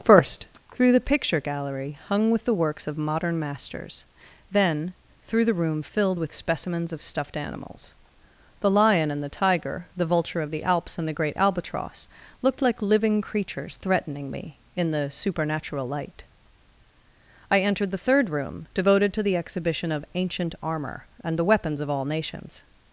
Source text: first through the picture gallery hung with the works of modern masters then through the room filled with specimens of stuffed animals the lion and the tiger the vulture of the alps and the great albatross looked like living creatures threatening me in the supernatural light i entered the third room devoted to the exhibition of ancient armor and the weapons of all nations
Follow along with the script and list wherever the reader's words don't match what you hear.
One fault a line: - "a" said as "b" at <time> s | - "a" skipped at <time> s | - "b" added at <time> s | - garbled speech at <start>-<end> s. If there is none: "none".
none